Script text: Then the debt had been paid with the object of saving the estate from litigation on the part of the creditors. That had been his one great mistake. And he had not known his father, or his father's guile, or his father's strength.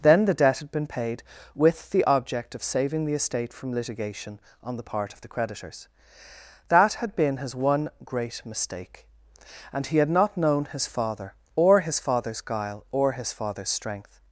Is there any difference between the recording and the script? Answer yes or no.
no